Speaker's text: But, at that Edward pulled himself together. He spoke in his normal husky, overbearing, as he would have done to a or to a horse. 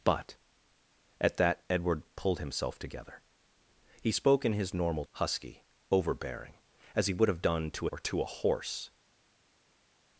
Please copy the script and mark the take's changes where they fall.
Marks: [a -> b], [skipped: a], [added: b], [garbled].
But, at that Edward pulled himself together. He spoke in his normal husky, overbearing, as he would have done to a or to a horse.